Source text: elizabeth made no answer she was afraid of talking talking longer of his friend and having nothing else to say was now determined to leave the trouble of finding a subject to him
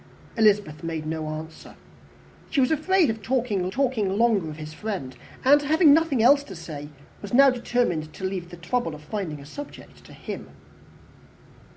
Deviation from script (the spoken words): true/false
false